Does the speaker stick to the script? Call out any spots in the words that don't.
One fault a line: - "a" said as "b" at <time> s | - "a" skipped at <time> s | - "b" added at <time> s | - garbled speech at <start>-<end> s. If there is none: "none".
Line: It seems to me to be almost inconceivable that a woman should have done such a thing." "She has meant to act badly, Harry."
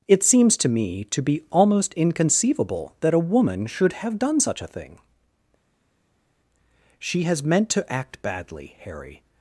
none